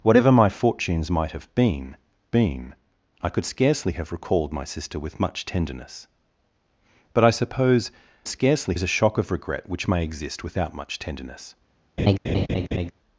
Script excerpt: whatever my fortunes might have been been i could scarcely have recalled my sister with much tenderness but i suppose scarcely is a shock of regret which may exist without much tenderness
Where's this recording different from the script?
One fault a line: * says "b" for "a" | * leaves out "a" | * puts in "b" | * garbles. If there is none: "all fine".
all fine